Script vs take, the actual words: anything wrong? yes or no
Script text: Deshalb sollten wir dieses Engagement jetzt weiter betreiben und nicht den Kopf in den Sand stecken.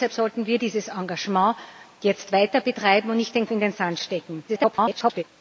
yes